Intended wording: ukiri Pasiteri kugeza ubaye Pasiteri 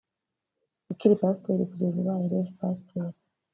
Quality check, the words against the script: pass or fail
fail